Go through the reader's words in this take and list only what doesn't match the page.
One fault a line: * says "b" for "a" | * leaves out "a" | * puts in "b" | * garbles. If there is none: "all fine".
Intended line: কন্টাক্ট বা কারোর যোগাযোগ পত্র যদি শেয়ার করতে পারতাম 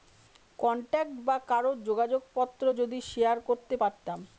all fine